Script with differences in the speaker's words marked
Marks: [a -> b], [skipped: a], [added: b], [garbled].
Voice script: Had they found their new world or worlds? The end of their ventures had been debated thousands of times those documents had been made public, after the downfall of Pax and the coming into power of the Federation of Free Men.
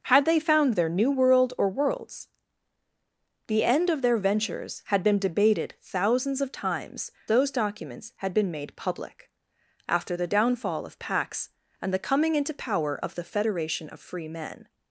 Had they found their new world or worlds? The end of their ventures had been debated thousands of times those documents had been made public, after the downfall of Pax and the coming into power of the Federation of Free Men.